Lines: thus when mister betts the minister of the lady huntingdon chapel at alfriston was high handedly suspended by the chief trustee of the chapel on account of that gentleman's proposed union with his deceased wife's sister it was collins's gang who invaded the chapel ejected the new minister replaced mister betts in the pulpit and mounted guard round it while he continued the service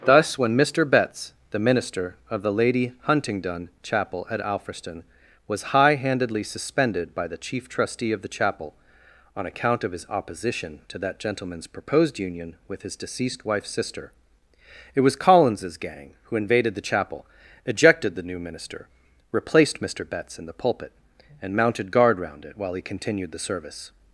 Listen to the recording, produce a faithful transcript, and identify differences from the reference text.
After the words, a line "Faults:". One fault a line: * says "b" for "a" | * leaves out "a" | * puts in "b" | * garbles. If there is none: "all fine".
thus when mister betts the minister of the lady huntingdon chapel at alfriston was high handedly suspended by the chief trustee of the chapel on account of his opposition to that gentleman's proposed union with his deceased wife's sister it was collins's gang who invaded the chapel ejected the new minister replaced mister betts in the pulpit and mounted guard round it while he continued the service
Faults:
* puts in "his opposition to"